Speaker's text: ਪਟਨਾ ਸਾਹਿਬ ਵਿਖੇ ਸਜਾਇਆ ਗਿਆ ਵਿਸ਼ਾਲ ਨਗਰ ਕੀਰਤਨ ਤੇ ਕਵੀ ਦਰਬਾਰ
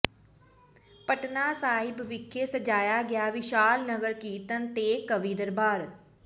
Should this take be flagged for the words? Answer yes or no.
no